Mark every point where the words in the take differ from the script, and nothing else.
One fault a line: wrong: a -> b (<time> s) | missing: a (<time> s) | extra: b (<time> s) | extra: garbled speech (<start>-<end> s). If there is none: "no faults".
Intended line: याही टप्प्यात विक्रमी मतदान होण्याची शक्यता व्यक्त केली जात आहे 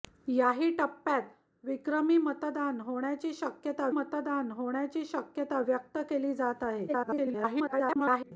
extra: मतदान होण्याची शक्यता (3.9 s)
extra: garbled speech (6.9-8.3 s)